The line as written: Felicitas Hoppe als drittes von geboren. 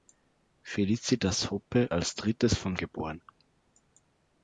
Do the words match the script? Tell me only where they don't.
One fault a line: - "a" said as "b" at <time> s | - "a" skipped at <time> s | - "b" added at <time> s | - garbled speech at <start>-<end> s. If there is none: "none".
none